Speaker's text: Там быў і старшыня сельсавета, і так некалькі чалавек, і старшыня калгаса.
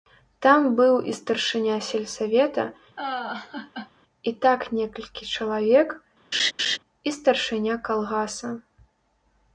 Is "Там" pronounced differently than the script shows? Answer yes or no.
no